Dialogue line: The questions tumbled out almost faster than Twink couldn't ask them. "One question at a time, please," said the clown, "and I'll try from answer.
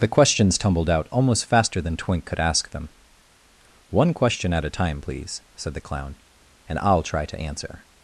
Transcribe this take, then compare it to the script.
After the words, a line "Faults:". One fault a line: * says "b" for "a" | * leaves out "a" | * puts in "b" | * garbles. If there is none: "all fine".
The questions tumbled out almost faster than Twink could ask them. "One question at a time, please," said the clown, "and I'll try to answer.
Faults:
* says "could" for "couldn't"
* says "to" for "from"